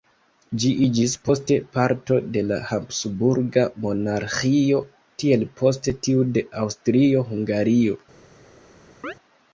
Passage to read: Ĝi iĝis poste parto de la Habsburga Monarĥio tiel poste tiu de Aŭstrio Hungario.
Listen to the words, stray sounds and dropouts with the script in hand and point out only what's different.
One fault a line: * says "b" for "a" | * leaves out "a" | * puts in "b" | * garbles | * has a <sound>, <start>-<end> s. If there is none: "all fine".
* has a chirp, 9.0-9.1 s